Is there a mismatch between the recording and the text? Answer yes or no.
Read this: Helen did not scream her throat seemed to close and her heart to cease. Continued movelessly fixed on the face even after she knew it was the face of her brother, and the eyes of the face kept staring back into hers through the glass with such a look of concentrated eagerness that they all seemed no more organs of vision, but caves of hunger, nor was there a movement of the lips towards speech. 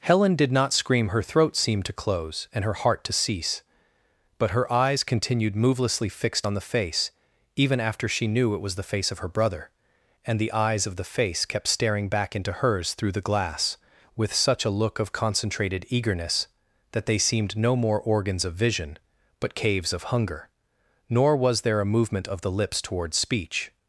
yes